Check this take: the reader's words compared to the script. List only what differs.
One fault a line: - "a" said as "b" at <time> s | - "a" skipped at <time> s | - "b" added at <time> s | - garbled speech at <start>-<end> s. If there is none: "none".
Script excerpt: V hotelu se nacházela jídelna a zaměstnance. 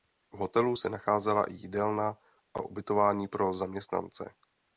- "i" added at 1.4 s
- "ubytování pro" added at 2.6 s